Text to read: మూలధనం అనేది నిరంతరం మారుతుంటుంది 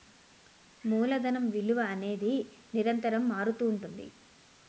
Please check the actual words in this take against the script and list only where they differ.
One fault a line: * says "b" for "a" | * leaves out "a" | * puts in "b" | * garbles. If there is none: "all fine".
* puts in "విలువ"